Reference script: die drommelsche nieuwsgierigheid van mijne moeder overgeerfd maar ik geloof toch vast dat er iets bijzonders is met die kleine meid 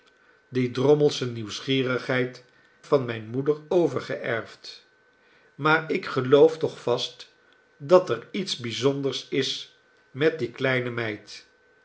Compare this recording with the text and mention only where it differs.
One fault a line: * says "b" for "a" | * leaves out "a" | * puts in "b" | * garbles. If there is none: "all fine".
all fine